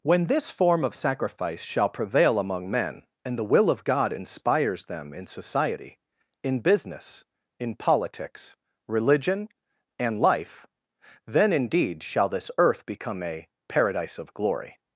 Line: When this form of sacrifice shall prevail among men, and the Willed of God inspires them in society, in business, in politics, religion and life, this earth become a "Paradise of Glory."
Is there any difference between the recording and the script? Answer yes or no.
yes